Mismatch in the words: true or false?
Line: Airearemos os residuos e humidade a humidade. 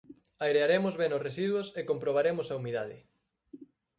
true